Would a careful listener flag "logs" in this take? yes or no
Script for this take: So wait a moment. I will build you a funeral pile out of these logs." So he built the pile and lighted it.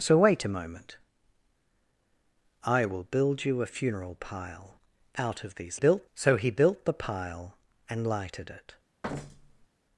yes